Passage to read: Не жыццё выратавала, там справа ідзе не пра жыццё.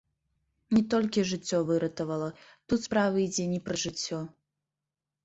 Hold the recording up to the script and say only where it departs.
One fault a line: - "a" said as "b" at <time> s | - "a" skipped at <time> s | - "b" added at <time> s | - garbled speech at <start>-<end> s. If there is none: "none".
- "толькі" added at 0.9 s
- "там" said as "тут" at 2.7 s